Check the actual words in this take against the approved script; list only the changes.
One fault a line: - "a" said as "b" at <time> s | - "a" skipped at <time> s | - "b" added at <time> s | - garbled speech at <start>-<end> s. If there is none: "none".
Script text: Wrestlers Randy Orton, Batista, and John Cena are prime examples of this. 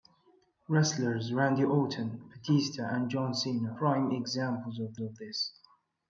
- "are" skipped at 3.7 s
- "of" added at 5.0 s